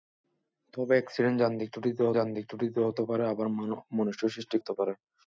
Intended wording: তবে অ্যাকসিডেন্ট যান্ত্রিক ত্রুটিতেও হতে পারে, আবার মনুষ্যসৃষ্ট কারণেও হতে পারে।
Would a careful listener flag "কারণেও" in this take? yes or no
yes